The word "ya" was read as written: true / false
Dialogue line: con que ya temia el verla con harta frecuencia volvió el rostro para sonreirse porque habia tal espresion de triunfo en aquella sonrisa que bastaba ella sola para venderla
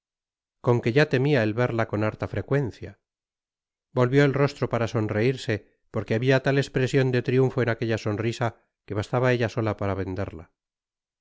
true